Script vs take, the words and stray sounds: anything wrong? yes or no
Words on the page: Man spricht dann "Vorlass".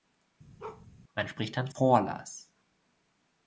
yes